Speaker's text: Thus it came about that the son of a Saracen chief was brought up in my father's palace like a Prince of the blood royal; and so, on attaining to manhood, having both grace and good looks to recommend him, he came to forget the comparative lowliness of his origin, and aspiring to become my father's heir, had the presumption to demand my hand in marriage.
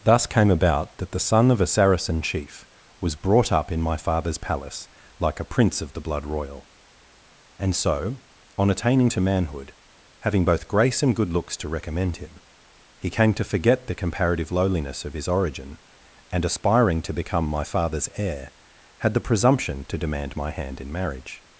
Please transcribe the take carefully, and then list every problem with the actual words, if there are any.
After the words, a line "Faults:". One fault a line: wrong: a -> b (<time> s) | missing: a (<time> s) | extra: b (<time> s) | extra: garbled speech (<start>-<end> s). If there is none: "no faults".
Thus came about that the son of a Saracen chief was brought up in my father's palace like a Prince of the blood royal; and so, on attaining to manhood, having both grace and good looks to recommend him, he came to forget the comparative lowliness of his origin, and aspiring to become my father's heir, had the presumption to demand my hand in marriage.
Faults:
missing: it (0.2 s)